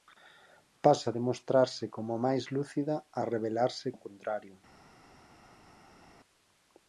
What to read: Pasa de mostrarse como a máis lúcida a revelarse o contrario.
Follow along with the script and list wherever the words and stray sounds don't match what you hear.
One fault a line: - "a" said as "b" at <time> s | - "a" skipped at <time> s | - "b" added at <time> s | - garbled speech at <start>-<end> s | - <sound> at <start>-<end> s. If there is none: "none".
none